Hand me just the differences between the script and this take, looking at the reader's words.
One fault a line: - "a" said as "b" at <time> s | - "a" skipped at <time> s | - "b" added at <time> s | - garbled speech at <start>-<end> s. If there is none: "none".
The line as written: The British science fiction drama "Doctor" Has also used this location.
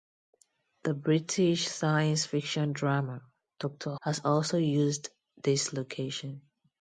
none